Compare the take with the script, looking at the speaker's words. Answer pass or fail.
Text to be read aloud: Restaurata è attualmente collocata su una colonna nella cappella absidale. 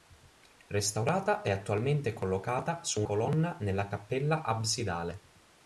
fail